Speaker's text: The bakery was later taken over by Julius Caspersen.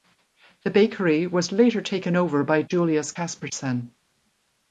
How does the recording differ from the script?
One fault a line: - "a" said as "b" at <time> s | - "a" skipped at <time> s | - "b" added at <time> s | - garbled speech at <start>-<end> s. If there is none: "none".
none